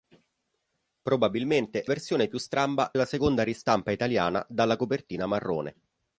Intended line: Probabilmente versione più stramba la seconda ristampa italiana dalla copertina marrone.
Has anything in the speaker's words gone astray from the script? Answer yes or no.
no